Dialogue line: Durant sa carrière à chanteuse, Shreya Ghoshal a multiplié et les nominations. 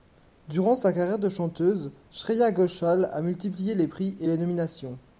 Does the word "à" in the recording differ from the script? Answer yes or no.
yes